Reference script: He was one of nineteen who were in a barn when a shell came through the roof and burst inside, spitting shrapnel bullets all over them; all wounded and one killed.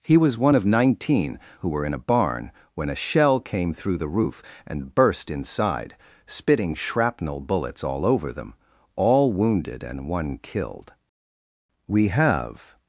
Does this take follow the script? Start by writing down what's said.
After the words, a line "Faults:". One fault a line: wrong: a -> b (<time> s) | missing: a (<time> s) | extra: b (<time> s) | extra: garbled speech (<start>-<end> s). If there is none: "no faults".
He was one of nineteen who were in a barn when a shell came through the roof and burst inside, spitting shrapnel bullets all over them; all wounded and one killed. We have
Faults:
extra: We have (11.9 s)